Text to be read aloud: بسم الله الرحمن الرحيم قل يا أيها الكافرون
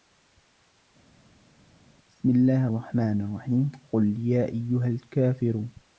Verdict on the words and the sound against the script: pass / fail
pass